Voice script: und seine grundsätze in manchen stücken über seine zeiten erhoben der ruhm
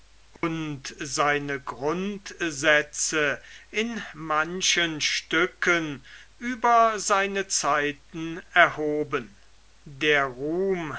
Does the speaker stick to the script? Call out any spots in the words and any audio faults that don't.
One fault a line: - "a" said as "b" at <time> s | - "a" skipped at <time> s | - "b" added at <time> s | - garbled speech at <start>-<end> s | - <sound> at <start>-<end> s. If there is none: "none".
- dropout at 0.4-0.4 s